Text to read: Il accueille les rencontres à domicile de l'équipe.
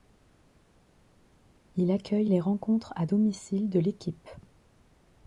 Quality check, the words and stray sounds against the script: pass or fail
pass